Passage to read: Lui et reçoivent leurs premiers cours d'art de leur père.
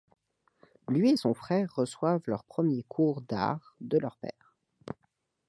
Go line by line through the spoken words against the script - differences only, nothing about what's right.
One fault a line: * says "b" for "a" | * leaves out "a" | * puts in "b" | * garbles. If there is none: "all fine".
* puts in "son frère"